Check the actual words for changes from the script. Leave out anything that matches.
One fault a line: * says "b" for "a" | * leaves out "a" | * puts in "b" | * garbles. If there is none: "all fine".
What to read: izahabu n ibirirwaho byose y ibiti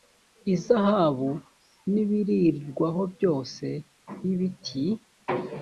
all fine